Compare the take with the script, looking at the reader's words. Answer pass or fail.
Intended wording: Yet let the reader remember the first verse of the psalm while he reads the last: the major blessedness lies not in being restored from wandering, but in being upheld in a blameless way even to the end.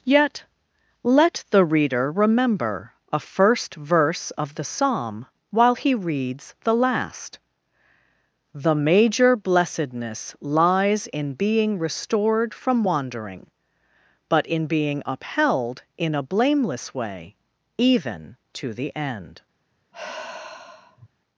fail